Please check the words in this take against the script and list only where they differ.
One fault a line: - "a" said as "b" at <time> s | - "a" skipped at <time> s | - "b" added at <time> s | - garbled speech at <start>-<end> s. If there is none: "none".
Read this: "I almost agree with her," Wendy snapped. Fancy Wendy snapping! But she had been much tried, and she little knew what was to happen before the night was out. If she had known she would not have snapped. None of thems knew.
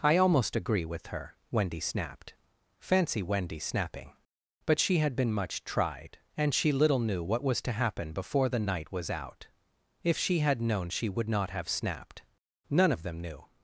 - "thems" said as "them" at 13.0 s